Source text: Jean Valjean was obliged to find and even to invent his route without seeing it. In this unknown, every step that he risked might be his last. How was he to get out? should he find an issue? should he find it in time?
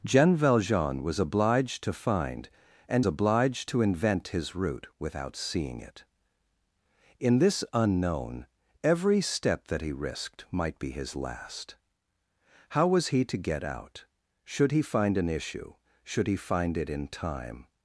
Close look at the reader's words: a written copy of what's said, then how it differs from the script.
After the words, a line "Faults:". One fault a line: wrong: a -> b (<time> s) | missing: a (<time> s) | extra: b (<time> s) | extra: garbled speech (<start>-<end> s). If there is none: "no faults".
Jean Valjean was obliged to find and obliged to invent his route without seeing it. In this unknown, every step that he risked might be his last. How was he to get out? should he find an issue? should he find it in time?
Faults:
wrong: even -> obliged (3.1 s)